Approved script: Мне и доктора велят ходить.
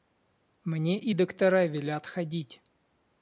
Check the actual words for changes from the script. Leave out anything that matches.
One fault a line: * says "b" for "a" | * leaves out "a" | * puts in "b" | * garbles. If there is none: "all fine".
all fine